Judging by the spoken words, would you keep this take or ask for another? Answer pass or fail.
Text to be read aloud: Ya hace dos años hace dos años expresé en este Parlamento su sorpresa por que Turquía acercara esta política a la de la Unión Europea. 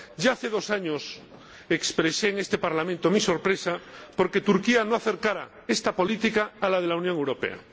fail